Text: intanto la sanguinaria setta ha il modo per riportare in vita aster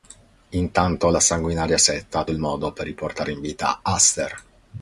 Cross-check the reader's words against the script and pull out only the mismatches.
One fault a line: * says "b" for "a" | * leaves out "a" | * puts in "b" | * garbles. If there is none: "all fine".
all fine